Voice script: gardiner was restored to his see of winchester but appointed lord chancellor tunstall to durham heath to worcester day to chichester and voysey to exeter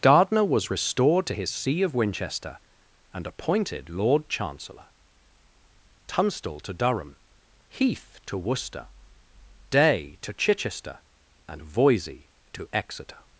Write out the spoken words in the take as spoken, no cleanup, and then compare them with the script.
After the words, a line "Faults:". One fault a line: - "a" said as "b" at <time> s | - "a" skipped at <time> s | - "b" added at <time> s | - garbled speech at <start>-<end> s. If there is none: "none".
gardiner was restored to his see of winchester and appointed lord chancellor tunstall to durham heath to worcester day to chichester and voysey to exeter
Faults:
- "but" said as "and" at 3.1 s